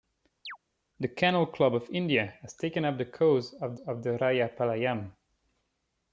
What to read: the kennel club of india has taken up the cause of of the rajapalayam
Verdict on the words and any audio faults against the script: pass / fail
fail